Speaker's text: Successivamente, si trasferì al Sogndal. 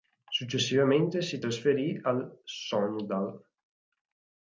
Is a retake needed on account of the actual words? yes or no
no